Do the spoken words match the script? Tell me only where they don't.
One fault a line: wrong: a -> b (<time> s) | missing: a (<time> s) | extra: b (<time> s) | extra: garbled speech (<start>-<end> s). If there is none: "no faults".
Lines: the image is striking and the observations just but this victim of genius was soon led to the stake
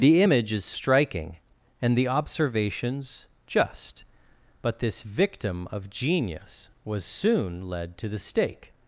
no faults